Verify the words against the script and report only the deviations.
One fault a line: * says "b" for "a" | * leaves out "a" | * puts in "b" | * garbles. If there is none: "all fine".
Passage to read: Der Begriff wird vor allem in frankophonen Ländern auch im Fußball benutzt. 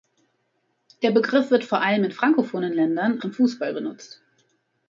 * leaves out "auch"